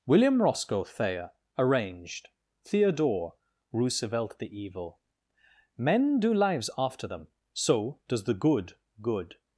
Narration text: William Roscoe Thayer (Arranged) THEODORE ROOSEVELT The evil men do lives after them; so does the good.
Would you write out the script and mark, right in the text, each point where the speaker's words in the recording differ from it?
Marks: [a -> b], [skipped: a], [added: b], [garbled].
William Roscoe Thayer (Arranged) THEODORE ROOSEVELT The evil men do lives after them; so does the good. [added: good]